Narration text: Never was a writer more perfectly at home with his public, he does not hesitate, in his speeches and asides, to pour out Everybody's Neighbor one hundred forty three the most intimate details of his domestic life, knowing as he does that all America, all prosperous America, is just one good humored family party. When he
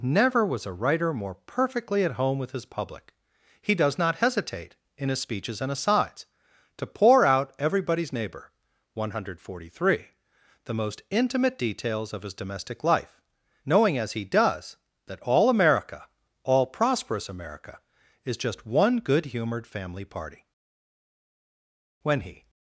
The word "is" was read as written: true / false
true